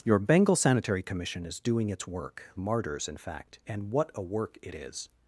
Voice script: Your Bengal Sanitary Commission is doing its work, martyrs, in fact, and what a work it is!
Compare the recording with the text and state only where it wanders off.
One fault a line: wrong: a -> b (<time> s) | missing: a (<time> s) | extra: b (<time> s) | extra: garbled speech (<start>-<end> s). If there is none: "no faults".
no faults